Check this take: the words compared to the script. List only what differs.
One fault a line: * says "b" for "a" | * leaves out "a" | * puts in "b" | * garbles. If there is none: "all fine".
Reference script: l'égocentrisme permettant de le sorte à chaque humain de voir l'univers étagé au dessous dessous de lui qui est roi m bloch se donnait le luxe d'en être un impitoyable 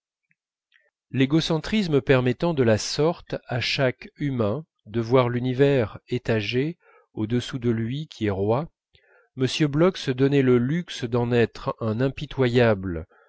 * says "la" for "le"
* leaves out "dessous"